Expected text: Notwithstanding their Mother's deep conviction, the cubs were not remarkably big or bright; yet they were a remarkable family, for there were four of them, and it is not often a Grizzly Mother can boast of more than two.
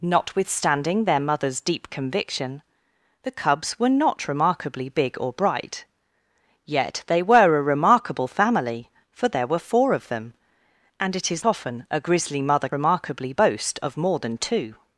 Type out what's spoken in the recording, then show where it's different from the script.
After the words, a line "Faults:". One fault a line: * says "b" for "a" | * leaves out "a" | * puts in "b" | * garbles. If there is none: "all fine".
Notwithstanding their Mother's deep conviction, the cubs were not remarkably big or bright; yet they were a remarkable family, for there were four of them, and it is often a Grizzly Mother remarkably boast of more than two.
Faults:
* leaves out "not"
* says "remarkably" for "can"